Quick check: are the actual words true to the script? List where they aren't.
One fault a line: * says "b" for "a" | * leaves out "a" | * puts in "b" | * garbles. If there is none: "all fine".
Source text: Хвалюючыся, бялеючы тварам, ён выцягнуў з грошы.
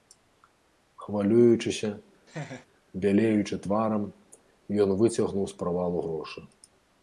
* puts in "правалу"